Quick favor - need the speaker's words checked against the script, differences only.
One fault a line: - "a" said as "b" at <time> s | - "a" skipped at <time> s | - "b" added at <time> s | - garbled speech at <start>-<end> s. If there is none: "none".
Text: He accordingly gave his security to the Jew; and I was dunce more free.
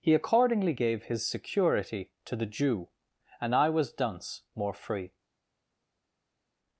none